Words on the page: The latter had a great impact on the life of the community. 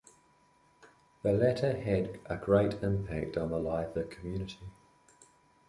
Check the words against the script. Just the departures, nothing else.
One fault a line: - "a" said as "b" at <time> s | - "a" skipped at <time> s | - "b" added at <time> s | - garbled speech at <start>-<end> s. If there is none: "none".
- "of" skipped at 4.0 s